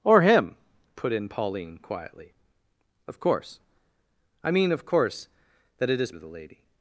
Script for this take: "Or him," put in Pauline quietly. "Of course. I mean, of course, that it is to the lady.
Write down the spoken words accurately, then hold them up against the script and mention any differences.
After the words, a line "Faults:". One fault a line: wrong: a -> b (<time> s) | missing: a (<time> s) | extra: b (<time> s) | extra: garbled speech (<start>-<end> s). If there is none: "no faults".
"Or him," put in Pauline quietly. "Of course. I mean, of course, that it is to the lady.
Faults:
no faults